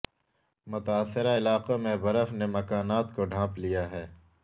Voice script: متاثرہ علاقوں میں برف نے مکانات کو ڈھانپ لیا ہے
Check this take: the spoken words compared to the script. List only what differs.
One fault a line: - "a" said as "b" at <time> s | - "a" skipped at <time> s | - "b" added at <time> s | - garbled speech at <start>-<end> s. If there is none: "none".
none